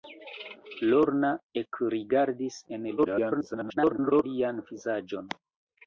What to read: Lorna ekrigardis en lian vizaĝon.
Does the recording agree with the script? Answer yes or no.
no